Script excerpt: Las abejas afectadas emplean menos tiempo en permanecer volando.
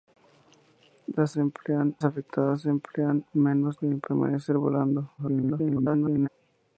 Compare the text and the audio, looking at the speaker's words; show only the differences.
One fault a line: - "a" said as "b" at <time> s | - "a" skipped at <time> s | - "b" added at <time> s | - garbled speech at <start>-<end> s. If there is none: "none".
- "abejas" said as "emplean" at 1.4 s
- "tiempo" skipped at 3.8 s
- garbled speech at 5.2-6.3 s